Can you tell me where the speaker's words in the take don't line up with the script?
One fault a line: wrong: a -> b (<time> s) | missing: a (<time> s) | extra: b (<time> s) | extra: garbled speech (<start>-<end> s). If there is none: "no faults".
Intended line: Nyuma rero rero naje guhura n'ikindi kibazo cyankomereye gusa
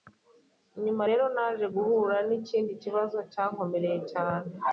missing: rero (1.2 s)
wrong: gusa -> cyane (4.1 s)